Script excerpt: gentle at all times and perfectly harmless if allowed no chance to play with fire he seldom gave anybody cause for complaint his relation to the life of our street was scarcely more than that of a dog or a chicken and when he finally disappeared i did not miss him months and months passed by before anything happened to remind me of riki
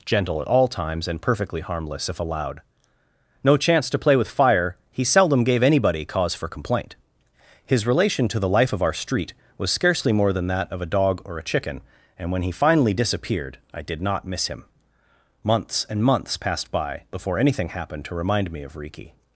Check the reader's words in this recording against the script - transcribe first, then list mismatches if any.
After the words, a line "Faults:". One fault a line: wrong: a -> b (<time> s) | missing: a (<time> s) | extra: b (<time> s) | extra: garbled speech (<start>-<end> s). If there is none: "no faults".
gentle at all times and perfectly harmless if allowed no chance to play with fire he seldom gave anybody cause for complaint his relation to the life of our street was scarcely more than that of a dog or a chicken and when he finally disappeared i did not miss him months and months passed by before anything happened to remind me of riki
Faults:
no faults